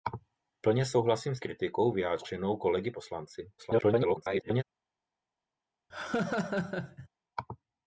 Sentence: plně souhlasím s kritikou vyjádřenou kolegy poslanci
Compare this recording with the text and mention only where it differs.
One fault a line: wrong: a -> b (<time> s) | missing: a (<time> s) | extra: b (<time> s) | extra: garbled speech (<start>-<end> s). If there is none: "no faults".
extra: garbled speech (3.6-4.6 s)